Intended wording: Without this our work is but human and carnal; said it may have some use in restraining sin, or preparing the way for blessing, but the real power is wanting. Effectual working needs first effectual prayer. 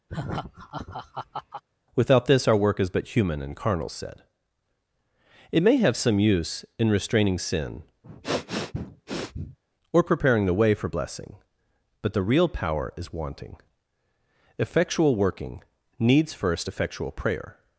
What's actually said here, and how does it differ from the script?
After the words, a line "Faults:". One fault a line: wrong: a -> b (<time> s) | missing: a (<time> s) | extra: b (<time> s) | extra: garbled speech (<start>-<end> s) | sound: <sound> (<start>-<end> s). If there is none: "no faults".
Without this our work is but human and carnal; said it may have some use in restraining sin, or preparing the way for blessing, but the real power is wanting. Effectual working needs first effectual prayer.
Faults:
sound: laugh (0.1-1.6 s)
sound: sniff (8.0-9.6 s)